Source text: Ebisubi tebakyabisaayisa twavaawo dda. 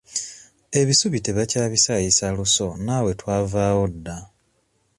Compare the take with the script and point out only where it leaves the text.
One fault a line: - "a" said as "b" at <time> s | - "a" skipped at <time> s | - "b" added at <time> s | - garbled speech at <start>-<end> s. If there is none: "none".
- "luso naawe" added at 2.4 s